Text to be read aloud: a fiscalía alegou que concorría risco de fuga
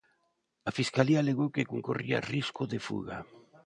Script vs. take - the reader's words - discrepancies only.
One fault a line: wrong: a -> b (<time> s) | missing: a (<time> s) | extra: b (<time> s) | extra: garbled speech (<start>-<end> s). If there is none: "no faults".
no faults